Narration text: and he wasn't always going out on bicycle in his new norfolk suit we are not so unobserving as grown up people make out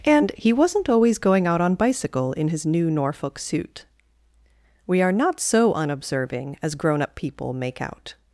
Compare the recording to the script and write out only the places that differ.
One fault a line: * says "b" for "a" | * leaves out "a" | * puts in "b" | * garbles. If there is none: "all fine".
all fine